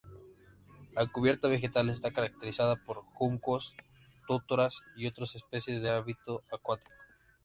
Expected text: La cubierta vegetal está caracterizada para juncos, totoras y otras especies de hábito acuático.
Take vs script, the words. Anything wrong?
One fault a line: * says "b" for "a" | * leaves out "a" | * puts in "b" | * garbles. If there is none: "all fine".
* says "por" for "para"